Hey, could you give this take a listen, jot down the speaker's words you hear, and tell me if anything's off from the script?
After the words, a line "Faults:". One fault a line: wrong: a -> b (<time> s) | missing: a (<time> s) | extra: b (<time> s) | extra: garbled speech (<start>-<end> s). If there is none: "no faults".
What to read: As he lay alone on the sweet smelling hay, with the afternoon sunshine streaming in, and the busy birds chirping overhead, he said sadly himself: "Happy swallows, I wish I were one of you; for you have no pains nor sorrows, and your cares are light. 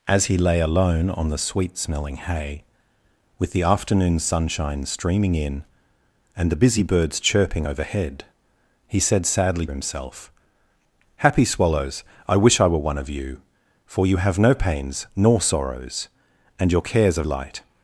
As he lay alone on the sweet smelling hay, with the afternoon sunshine streaming in, and the busy birds chirping overhead, he said sadly himself: "Happy swallows, I wish I were one of you; for you have no pains nor sorrows, and your cares are light.
Faults:
no faults